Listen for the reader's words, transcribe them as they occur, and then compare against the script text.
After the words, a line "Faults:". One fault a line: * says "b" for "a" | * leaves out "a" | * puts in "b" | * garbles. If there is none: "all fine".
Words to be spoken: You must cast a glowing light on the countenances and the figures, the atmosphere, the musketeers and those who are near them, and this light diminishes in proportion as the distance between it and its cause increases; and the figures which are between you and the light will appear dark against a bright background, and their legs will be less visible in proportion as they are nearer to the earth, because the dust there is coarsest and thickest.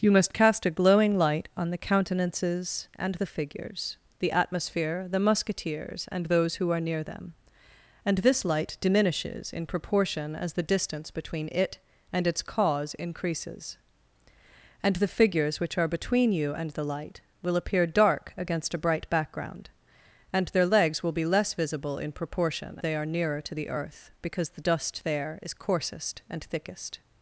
You must cast a glowing light on the countenances and the figures, the atmosphere, the musketeers and those who are near them, and this light diminishes in proportion as the distance between it and its cause increases; and the figures which are between you and the light will appear dark against a bright background, and their legs will be less visible in proportion they are nearer to the earth, because the dust there is coarsest and thickest.
Faults:
* leaves out "as"